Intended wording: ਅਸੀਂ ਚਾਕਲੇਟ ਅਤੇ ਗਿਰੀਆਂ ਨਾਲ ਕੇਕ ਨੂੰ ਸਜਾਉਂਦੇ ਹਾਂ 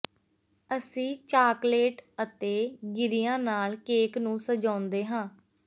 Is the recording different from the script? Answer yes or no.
no